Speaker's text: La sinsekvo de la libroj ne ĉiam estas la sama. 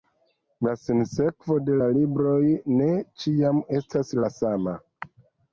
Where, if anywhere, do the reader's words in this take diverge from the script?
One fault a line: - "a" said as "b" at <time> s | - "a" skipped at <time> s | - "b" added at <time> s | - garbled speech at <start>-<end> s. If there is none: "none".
none